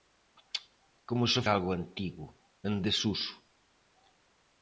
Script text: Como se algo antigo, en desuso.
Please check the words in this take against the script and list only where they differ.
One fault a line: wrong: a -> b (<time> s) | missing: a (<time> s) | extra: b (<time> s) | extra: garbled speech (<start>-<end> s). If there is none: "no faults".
no faults